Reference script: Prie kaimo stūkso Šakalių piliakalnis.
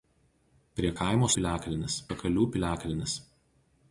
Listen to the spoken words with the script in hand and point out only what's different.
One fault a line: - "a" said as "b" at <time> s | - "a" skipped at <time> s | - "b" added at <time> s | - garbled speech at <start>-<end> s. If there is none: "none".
- "stūkso" said as "piliakalnis" at 1.4 s